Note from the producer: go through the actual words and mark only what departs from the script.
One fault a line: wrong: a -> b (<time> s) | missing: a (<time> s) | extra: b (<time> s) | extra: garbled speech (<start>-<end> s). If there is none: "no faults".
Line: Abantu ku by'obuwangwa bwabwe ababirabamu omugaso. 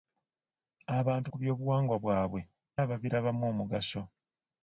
no faults